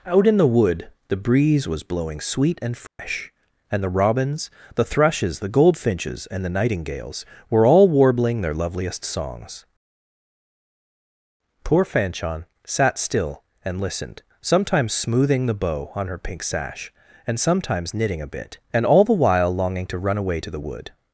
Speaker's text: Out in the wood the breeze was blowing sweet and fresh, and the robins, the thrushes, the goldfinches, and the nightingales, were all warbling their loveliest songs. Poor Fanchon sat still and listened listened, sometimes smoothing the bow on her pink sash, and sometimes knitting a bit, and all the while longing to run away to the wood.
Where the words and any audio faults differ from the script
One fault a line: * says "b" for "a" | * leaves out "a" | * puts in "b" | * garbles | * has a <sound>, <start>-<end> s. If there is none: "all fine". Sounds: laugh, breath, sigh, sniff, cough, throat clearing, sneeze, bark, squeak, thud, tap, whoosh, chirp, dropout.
* has a dropout, 2.9-3.0 s
* leaves out "listened"